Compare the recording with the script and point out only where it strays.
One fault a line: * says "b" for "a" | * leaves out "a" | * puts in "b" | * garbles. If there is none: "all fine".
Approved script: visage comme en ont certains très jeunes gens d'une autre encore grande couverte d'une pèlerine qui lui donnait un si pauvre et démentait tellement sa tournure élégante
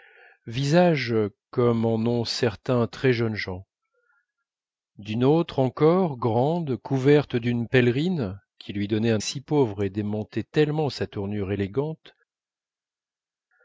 all fine